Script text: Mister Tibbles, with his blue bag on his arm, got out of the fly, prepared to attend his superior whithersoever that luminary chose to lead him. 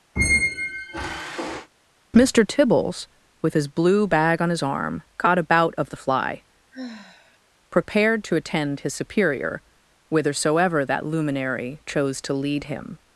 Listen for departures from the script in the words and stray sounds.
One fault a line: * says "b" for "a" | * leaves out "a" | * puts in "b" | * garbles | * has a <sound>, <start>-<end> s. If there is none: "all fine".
* has a squeak, 0.2-1.7 s
* says "about" for "out"
* has a sigh, 6.7-7.4 s